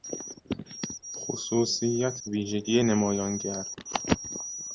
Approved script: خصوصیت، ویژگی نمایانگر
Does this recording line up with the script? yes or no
yes